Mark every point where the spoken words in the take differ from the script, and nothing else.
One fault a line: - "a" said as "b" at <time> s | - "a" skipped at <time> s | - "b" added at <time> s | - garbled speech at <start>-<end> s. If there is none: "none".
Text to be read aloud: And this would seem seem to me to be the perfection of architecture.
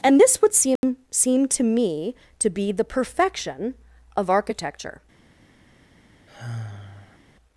none